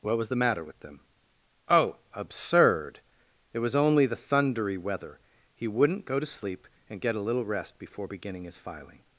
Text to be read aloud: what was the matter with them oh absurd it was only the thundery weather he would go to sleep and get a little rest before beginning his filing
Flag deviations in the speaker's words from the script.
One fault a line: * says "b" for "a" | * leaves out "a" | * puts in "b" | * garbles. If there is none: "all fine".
* says "wouldn't" for "would"